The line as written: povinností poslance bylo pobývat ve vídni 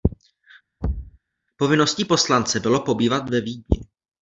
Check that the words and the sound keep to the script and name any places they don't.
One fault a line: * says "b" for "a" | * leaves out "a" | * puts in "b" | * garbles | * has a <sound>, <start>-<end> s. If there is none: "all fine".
* has a thud, 0.8-1.2 s